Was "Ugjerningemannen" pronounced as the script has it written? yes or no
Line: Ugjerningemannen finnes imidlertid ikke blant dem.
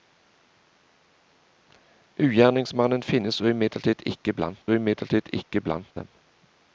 yes